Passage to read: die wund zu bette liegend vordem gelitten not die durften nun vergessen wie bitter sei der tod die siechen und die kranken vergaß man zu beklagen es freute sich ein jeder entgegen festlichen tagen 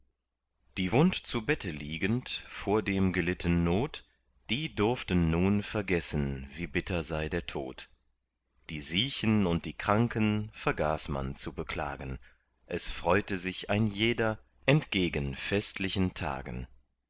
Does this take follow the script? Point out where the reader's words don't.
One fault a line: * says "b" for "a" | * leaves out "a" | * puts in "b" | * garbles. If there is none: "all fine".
all fine